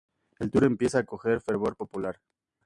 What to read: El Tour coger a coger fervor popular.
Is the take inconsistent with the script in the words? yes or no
yes